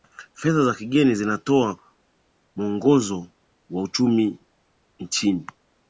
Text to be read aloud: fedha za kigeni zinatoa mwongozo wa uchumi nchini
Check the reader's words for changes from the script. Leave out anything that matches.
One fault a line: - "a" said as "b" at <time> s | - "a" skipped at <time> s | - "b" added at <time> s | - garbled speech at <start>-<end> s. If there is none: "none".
none